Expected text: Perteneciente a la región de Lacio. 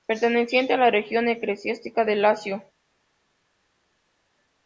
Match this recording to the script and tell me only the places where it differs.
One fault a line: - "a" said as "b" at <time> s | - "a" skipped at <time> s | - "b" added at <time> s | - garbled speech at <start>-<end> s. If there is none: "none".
- "eclesiástica" added at 1.3 s